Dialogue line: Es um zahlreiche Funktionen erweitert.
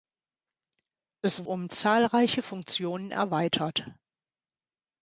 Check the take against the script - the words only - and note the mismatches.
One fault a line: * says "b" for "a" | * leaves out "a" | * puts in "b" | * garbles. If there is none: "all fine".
all fine